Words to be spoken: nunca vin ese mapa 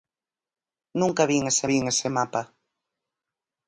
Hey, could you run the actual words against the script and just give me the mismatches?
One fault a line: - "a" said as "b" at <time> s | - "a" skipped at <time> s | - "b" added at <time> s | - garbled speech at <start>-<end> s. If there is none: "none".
- "vin ese" added at 1.7 s